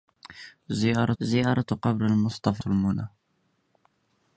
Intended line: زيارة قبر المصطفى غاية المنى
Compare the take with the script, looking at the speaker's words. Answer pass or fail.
fail